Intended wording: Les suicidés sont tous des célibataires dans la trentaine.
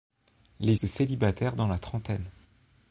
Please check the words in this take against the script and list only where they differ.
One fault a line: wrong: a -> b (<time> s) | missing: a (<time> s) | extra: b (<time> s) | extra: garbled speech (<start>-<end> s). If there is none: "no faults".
missing: suicidés sont tous (0.8 s)